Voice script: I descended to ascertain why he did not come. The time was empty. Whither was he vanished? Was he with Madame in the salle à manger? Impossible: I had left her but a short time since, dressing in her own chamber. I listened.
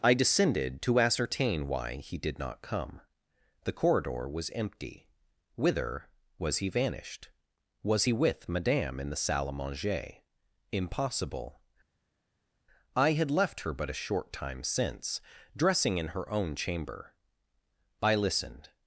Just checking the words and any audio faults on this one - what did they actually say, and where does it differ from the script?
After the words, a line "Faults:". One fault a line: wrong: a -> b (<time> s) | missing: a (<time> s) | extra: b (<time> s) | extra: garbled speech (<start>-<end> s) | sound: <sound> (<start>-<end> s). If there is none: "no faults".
I descended to ascertain why he did not come. The corridor was empty. Whither was he vanished? Was he with Madame in the salle à manger? Impossible: I had left her but a short time since, dressing in her own chamber. I listened.
Faults:
wrong: time -> corridor (3.7 s)